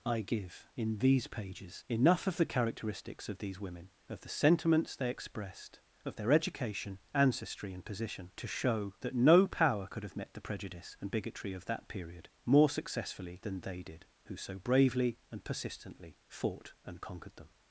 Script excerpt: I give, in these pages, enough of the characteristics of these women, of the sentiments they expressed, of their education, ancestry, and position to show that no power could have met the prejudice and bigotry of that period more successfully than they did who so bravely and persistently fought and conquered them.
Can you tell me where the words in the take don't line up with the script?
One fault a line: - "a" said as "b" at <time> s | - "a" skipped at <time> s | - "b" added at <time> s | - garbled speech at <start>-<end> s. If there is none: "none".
none